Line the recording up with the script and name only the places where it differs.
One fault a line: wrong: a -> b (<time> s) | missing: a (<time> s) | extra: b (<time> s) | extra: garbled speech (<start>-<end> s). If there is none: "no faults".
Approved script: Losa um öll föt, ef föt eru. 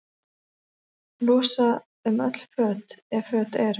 no faults